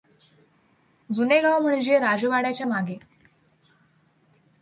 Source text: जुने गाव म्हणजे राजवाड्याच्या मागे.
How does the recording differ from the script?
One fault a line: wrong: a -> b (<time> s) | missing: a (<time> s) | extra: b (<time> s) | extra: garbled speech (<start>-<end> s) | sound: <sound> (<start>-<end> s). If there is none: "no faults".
no faults